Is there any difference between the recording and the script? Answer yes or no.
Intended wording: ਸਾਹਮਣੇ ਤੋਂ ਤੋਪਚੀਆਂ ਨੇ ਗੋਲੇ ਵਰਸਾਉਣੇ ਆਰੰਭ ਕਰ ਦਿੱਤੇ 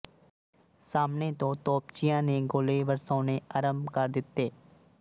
no